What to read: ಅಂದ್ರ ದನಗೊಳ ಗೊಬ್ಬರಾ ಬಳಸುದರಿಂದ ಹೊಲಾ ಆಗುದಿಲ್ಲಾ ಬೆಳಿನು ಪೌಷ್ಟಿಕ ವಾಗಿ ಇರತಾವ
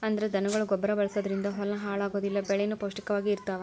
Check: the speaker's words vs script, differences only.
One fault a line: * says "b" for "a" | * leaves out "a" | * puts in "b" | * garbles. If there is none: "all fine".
* puts in "ಹಾಳ"